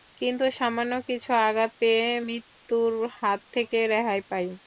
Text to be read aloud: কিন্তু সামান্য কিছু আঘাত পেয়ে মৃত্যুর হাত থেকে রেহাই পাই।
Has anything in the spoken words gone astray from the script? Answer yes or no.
no